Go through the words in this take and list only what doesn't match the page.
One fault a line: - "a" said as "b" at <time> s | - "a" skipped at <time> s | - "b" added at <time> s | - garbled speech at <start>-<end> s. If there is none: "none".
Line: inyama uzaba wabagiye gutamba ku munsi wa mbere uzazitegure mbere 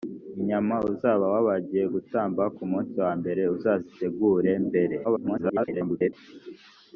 - garbled speech at 5.0-6.1 s